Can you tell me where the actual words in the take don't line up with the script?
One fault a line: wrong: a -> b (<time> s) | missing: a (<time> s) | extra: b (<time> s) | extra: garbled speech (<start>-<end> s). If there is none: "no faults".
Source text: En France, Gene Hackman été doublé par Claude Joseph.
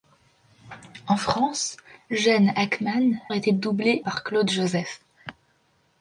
no faults